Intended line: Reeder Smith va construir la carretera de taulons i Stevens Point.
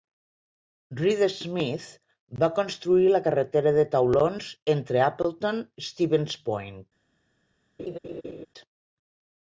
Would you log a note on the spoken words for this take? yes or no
yes